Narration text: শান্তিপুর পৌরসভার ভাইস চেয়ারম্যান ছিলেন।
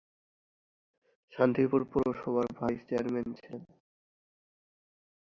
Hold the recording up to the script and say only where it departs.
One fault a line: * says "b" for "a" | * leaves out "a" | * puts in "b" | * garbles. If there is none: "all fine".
all fine